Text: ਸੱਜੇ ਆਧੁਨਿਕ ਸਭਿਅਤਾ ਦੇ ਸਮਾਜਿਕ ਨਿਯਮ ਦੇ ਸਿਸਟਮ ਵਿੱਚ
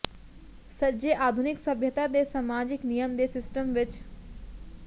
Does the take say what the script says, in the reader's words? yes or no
yes